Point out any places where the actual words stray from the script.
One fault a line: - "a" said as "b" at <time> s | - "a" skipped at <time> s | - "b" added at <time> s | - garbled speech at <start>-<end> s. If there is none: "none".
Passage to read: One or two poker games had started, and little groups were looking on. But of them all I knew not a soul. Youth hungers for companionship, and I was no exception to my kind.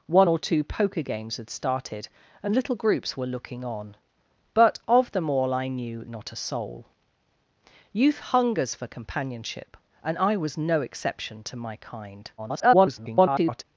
- garbled speech at 12.4-13.6 s